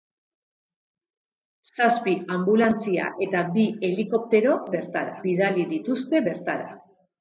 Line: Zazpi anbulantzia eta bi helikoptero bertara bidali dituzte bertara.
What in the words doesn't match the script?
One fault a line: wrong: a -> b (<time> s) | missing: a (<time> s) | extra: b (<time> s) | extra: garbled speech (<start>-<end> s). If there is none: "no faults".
no faults